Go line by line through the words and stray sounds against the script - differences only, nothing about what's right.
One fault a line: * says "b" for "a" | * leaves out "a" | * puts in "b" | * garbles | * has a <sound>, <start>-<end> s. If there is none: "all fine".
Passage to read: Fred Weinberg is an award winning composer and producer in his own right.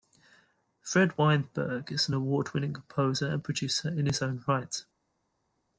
all fine